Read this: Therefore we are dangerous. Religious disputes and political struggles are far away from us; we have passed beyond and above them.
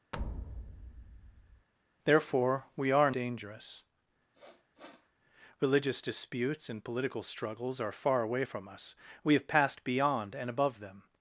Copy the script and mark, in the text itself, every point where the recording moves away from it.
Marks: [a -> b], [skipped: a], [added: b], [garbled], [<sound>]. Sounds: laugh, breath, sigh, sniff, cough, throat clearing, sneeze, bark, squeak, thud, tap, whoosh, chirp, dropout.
[thud] Therefore we are dangerous. [sniff] Religious disputes and political struggles are far away from us; we have passed beyond and above them.